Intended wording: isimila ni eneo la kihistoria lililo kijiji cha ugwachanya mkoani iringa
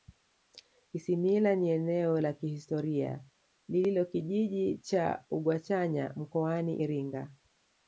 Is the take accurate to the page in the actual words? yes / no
yes